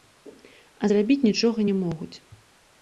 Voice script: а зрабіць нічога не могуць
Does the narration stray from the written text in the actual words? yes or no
no